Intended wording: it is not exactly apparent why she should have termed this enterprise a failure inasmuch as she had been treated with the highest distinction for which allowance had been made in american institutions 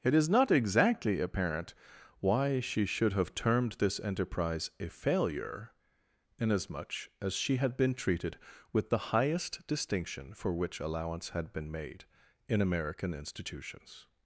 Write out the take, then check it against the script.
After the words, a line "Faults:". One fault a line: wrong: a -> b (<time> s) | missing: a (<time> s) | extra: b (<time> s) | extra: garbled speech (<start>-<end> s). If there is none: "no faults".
it is not exactly apparent why she should have termed this enterprise a failure inasmuch as she had been treated with the highest distinction for which allowance had been made in american institutions
Faults:
no faults